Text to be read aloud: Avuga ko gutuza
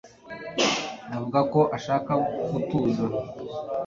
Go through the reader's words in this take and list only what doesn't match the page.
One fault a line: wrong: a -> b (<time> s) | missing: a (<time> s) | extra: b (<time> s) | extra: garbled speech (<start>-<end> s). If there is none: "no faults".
extra: ashaka (1.8 s)